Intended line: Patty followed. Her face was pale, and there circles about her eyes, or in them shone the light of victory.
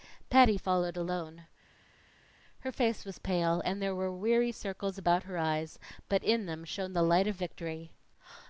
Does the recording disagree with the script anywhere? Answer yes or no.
yes